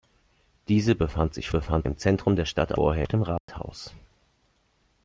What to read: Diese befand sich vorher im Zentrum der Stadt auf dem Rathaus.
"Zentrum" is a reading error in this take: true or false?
false